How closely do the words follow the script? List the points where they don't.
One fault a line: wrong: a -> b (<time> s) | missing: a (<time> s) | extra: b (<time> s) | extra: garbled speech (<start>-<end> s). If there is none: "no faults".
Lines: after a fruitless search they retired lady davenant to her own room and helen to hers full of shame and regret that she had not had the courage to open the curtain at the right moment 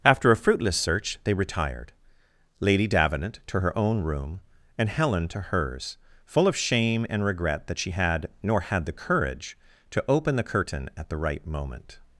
wrong: not -> nor (8.4 s)